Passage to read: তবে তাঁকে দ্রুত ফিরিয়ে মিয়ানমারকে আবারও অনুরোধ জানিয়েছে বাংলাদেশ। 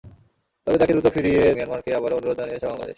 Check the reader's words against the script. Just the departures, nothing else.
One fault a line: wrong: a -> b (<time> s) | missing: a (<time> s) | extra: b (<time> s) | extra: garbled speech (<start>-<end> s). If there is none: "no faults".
no faults